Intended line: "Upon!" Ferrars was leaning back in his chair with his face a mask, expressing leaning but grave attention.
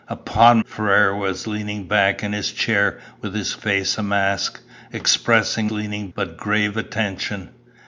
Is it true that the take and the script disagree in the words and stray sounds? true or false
false